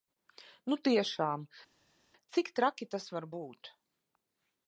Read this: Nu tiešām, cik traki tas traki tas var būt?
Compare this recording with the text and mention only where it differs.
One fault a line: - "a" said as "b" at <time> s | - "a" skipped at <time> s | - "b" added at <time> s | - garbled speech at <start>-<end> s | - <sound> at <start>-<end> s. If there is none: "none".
- "traki tas" skipped at 3.1 s